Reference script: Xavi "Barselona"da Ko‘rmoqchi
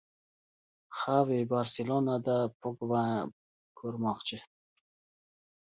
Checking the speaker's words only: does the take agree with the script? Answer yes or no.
yes